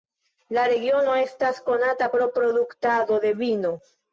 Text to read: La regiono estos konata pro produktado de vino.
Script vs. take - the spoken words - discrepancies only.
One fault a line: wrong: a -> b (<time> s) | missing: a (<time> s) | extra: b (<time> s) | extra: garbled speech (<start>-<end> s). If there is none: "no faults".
wrong: estos -> estas (1.2 s)